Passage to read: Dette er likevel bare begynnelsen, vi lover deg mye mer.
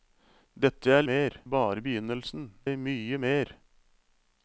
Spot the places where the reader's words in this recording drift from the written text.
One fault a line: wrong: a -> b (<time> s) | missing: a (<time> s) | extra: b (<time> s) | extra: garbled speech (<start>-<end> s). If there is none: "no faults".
wrong: likevel -> mer (1.1 s)
missing: vi lover (2.5 s)